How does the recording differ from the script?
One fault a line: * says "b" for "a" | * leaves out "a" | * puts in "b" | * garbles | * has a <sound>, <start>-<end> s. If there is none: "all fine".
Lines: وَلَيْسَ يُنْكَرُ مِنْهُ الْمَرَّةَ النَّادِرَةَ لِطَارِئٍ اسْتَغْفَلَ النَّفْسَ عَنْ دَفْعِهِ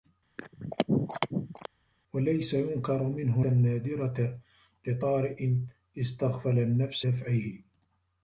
* has a throat clearing, 0.4-1.7 s
* leaves out "الْمَرَّةَ"
* leaves out "عَنْ"